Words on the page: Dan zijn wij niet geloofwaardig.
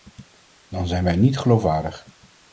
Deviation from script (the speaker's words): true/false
false